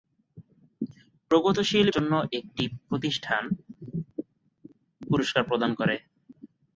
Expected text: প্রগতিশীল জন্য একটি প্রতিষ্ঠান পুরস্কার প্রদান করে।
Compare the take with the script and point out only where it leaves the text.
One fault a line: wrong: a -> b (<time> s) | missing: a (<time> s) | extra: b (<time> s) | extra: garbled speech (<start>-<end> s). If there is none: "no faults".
no faults